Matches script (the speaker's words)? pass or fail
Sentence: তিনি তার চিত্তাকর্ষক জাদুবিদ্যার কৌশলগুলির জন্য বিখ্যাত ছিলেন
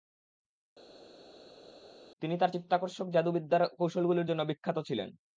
pass